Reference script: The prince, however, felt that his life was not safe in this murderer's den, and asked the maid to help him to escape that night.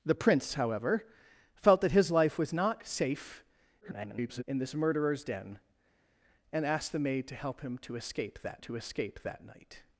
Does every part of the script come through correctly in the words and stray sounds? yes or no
no